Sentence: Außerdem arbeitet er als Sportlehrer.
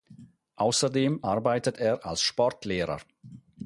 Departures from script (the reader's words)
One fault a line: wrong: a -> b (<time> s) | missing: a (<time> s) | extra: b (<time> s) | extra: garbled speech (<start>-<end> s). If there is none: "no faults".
no faults